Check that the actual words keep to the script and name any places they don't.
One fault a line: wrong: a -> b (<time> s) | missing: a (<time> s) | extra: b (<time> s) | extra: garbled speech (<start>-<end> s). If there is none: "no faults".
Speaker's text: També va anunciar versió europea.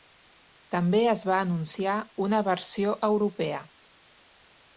extra: es (1.1 s)
extra: una (2.3 s)